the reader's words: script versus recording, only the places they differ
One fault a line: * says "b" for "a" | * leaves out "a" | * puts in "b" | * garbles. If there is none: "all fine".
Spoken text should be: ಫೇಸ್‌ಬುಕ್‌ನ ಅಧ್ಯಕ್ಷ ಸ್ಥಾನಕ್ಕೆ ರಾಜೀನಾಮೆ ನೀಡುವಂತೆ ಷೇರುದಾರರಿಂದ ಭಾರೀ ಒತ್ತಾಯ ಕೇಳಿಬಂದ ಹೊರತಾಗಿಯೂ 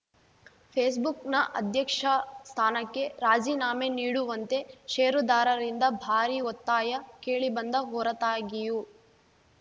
all fine